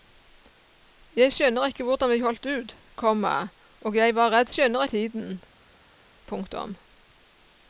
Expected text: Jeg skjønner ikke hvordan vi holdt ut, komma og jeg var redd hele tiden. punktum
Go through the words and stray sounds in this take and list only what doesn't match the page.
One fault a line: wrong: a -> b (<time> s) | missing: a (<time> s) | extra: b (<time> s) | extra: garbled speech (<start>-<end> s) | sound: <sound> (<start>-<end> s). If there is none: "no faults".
wrong: hele -> skjønner (4.5 s)